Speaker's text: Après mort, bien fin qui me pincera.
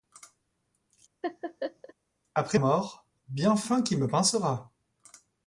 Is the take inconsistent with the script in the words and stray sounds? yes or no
yes